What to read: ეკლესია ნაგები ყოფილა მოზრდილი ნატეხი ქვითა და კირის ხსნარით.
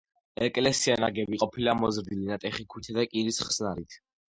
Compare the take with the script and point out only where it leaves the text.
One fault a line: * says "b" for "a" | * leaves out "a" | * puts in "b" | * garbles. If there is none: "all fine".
all fine